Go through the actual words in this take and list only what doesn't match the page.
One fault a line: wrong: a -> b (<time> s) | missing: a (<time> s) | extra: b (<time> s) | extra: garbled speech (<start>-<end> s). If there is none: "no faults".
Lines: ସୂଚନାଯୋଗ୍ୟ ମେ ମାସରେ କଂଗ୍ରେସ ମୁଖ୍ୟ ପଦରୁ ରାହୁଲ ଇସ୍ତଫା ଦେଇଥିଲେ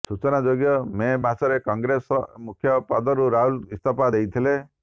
no faults